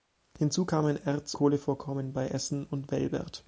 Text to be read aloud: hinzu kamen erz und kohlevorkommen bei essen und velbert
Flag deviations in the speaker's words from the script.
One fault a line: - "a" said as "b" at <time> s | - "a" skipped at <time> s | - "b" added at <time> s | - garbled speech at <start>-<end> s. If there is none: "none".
- "und" skipped at 1.4 s